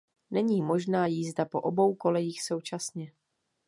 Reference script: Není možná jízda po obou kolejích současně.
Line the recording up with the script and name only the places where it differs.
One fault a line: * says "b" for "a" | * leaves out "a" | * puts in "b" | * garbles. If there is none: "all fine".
all fine